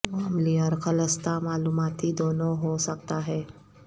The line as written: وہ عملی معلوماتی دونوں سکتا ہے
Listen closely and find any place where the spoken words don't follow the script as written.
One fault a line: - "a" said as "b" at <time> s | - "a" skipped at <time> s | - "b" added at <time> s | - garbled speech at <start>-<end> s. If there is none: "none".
- "اور خالصتا" added at 0.6 s
- "ہو" added at 2.6 s